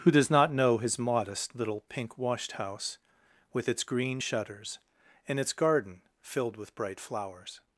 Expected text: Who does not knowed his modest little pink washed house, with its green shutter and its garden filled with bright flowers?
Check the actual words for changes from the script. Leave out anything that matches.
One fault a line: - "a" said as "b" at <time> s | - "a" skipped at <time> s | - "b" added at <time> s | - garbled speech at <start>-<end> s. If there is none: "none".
- "knowed" said as "know" at 0.5 s
- "shutter" said as "shutters" at 4.2 s